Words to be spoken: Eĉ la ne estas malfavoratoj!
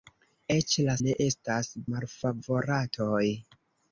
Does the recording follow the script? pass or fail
pass